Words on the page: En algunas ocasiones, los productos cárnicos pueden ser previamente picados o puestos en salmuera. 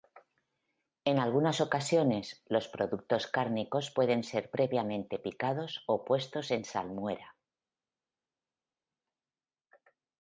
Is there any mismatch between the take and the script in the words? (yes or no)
no